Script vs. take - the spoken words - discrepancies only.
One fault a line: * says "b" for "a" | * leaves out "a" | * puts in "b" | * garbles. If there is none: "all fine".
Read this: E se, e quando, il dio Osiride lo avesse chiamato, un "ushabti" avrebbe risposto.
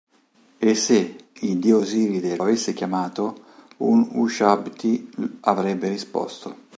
* leaves out "e quando"
* leaves out "lo"